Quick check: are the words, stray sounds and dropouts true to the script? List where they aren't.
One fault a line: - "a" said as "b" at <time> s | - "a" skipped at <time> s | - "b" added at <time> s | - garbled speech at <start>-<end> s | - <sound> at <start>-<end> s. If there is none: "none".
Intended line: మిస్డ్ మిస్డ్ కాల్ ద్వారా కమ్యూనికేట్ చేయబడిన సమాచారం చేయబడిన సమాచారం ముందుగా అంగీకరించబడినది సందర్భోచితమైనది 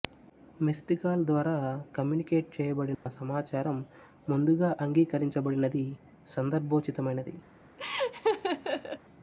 - "మిస్డ్" skipped at 0.9 s
- dropout at 2.9-3.1 s
- "చేయబడిన సమాచారం" skipped at 3.8 s
- laugh at 7.8-9.0 s